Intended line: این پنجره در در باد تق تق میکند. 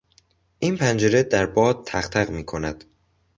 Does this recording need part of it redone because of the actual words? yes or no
yes